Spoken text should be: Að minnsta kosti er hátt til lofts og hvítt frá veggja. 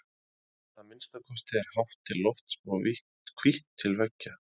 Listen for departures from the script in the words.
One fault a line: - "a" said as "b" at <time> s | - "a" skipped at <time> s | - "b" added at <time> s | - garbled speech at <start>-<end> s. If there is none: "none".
- "frá" said as "til" at 3.8 s